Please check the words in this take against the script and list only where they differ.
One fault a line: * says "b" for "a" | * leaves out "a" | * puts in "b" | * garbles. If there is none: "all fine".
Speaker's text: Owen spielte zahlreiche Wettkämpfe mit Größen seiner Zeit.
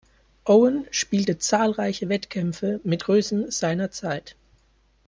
all fine